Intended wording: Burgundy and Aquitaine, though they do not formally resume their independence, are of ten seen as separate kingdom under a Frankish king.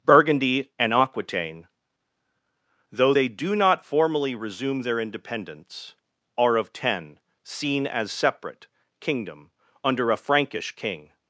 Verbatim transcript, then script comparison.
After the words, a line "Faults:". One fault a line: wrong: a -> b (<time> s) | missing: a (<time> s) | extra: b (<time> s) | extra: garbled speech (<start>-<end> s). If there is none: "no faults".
Burgundy and Aquitaine, though they do not formally resume their independence, are of ten seen as separate kingdom under a Frankish king.
Faults:
no faults